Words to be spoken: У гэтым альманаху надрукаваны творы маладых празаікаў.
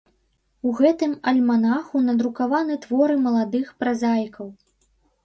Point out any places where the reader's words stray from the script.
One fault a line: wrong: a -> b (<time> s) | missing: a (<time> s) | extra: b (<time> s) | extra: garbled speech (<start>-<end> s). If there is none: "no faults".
no faults